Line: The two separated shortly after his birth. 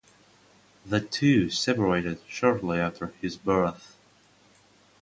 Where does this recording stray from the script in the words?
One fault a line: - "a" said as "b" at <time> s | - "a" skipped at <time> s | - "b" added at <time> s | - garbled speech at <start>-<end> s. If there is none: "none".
none